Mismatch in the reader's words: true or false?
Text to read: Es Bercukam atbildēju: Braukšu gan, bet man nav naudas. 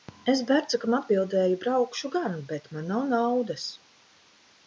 false